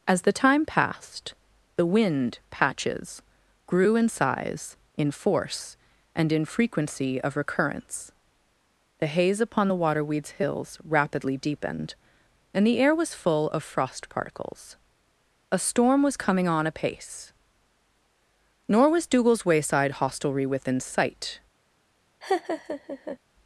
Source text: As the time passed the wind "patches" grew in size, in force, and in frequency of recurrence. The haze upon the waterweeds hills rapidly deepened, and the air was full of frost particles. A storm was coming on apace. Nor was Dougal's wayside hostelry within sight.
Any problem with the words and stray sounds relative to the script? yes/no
yes